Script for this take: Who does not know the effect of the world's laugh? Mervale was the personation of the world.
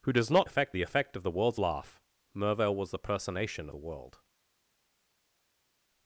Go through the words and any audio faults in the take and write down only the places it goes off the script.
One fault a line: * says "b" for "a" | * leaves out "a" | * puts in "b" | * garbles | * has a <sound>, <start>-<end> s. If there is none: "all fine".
* says "effect" for "know"
* leaves out "of"